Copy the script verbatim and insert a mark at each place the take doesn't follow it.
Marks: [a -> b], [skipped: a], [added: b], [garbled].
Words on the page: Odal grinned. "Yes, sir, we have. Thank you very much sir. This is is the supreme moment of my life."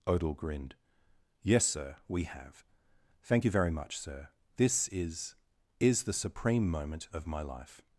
Odal grinned. "Yes, sir, we have. Thank you very much sir. This is is the supreme moment of my life."